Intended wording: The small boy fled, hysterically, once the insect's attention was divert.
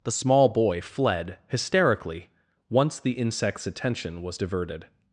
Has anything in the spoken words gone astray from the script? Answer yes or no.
yes